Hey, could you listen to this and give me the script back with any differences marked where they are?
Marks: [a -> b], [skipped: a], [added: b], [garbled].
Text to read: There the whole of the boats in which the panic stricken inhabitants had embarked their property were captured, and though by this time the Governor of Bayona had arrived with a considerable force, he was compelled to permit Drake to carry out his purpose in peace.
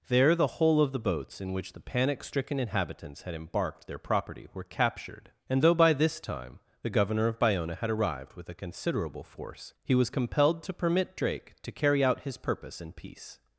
There the whole of the boats in which the panic stricken inhabitants had embarked their property were captured, and though by this time the Governor of Bayona had arrived with a considerable force, he was compelled to permit Drake to carry out his purpose in peace.